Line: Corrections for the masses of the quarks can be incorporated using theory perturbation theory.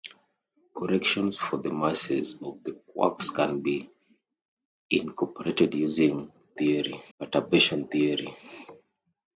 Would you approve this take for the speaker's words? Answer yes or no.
yes